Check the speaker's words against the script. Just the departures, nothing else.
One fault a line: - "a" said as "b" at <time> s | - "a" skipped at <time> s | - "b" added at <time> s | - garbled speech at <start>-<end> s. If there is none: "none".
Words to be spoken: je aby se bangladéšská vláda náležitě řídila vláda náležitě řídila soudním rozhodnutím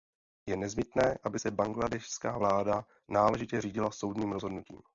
- "nezbytné" added at 0.6 s
- "vláda náležitě řídila" skipped at 3.9 s